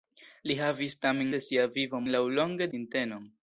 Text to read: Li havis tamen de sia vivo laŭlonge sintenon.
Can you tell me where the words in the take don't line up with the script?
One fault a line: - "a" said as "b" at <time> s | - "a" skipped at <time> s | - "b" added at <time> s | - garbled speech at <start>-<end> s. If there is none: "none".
none